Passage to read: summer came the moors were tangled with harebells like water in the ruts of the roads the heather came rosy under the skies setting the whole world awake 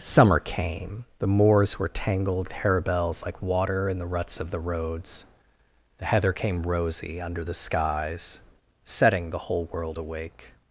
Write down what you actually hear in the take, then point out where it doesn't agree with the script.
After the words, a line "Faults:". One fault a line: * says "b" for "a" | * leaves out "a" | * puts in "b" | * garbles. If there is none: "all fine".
summer came the moors were tangled harebells like water in the ruts of the roads the heather came rosy under the skies setting the whole world awake
Faults:
* leaves out "with"